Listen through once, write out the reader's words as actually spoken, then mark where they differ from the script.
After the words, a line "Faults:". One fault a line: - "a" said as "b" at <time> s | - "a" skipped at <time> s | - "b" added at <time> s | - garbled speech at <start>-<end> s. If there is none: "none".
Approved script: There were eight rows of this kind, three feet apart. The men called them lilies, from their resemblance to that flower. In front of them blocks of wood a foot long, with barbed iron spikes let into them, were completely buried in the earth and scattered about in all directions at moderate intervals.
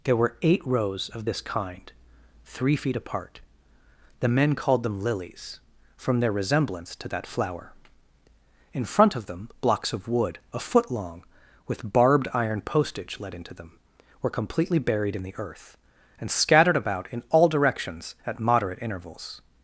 There were eight rows of this kind, three feet apart. The men called them lilies, from their resemblance to that flower. In front of them blocks of wood a foot long, with barbed iron postage let into them, were completely buried in the earth and scattered about in all directions at moderate intervals.
Faults:
- "spikes" said as "postage" at 12.6 s